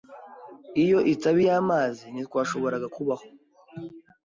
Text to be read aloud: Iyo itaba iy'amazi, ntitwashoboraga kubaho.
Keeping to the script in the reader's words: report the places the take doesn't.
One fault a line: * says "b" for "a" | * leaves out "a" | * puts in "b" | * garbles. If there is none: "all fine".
all fine